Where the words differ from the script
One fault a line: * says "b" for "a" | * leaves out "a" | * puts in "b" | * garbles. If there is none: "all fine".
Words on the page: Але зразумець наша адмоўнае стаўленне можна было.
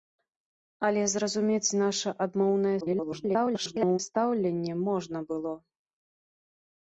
* garbles